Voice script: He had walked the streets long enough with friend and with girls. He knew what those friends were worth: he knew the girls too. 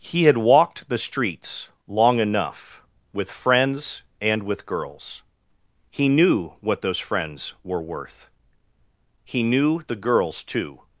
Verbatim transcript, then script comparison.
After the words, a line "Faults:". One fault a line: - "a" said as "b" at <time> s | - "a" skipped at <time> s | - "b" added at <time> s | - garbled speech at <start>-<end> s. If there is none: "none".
He had walked the streets long enough with friends and with girls. He knew what those friends were worth: he knew the girls too.
Faults:
- "friend" said as "friends" at 3.3 s